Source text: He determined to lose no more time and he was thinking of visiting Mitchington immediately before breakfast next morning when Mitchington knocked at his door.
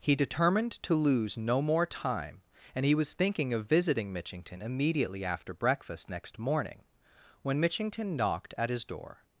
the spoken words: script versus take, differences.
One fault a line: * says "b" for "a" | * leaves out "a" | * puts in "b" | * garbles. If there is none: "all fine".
* says "after" for "before"